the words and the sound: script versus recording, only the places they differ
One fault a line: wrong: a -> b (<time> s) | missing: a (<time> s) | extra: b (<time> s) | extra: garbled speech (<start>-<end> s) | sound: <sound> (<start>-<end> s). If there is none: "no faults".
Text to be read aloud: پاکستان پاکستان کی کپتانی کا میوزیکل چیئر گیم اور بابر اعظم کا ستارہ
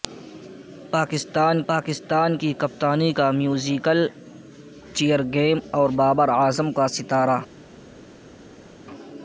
no faults